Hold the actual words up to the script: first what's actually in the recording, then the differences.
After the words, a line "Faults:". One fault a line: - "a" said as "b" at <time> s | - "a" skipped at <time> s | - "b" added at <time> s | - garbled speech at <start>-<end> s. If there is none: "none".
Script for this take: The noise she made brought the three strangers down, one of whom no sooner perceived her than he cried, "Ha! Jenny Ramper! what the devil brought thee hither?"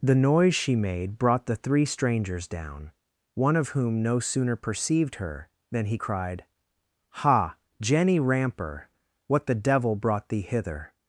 The noise she made brought the three strangers down, one of whom no sooner perceived her than he cried, "Ha! Jenny Ramper! what the devil brought thee hither?"
Faults:
none